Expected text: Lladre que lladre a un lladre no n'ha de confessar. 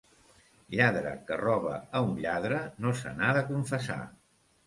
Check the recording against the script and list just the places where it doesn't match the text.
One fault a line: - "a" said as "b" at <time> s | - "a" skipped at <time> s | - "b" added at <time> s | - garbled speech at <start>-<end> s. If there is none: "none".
- "lladre" said as "roba" at 1.4 s
- "se" added at 3.0 s